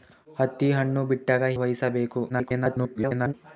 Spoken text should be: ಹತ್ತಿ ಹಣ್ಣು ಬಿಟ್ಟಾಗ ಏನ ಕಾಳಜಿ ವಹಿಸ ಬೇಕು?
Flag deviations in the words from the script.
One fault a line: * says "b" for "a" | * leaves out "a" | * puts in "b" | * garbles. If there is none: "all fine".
* leaves out "ಏನ ಕಾಳಜಿ"
* garbles